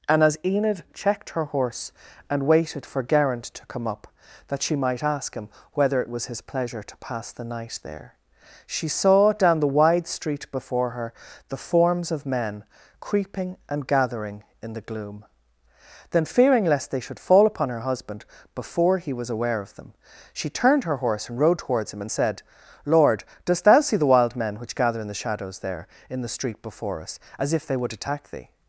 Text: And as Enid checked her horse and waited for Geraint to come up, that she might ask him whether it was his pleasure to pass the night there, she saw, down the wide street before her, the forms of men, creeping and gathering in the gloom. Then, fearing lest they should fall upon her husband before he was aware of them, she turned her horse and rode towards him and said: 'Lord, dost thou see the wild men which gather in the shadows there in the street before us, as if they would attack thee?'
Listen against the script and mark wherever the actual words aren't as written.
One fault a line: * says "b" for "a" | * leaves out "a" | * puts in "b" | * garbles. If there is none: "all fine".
all fine